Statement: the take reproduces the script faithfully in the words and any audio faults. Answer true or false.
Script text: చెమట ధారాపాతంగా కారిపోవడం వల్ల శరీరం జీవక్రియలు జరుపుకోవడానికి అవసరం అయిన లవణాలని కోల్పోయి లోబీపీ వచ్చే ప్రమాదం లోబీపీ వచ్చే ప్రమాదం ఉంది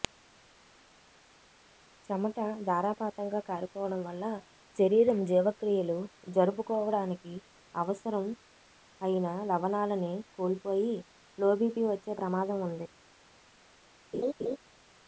false